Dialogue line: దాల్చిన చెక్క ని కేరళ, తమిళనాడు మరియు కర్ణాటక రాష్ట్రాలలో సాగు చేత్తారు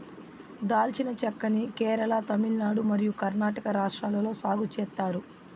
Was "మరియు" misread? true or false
false